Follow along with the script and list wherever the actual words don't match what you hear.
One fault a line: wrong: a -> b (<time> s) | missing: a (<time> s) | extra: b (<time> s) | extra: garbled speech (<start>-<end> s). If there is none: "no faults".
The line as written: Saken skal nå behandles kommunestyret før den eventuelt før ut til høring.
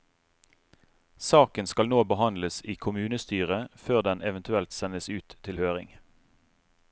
extra: i (2.6 s)
wrong: før -> sendes (4.7 s)